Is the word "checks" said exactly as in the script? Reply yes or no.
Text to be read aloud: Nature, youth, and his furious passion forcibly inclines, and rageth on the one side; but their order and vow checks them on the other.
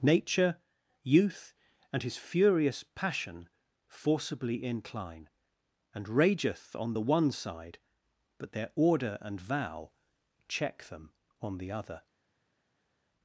no